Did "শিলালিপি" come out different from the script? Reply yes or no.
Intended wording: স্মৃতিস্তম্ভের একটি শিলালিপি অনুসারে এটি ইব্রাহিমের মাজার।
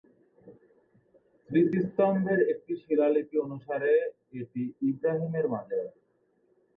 no